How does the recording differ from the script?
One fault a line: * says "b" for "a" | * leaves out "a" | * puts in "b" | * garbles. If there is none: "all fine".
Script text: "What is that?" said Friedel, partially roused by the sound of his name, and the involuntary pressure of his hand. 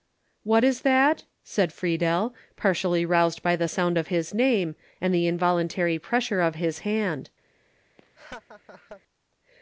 all fine